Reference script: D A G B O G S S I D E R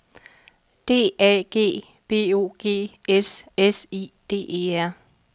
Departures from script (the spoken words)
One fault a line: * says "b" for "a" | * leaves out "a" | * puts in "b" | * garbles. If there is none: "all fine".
all fine